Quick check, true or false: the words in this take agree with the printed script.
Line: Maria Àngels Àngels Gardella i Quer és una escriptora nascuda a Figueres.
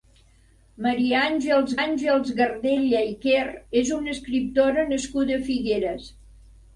true